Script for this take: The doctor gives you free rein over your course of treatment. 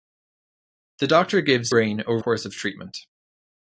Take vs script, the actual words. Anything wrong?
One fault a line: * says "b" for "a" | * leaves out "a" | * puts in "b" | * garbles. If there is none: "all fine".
* leaves out "you free"
* leaves out "your"